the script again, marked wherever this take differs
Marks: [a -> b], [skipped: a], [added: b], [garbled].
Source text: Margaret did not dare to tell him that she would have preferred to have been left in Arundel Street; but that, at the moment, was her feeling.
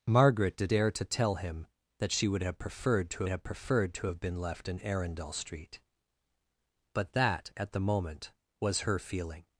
Margaret did [skipped: not] dare to tell him that she would have preferred to have [added: preferred to have] been left in Arundel Street; but that, at the moment, was her feeling.